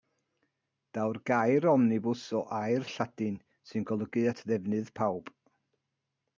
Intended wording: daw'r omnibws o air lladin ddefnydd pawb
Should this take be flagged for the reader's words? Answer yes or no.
yes